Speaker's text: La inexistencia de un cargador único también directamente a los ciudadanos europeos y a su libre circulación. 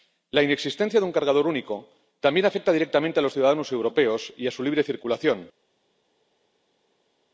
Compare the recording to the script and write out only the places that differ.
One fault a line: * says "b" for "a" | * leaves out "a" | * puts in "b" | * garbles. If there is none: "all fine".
* puts in "afecta"